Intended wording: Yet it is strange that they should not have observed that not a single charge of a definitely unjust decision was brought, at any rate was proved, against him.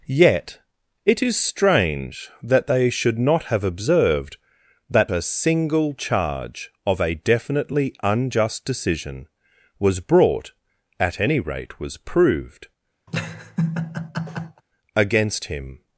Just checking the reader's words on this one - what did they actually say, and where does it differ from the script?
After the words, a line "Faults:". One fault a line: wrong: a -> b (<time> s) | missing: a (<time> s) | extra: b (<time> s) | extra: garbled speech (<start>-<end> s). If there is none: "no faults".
Yet it is strange that they should not have observed that a single charge of a definitely unjust decision was brought, at any rate was proved, against him.
Faults:
missing: not (5.1 s)